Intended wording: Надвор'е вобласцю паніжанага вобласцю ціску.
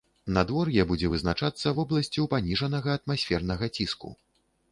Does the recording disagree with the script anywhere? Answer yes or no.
yes